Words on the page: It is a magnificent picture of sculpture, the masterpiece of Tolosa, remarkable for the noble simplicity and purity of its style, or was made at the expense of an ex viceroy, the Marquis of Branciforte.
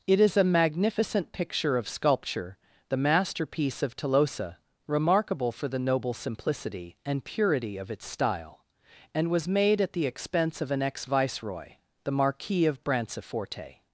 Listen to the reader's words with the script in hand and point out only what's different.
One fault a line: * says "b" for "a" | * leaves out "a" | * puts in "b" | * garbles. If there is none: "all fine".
* says "and" for "or"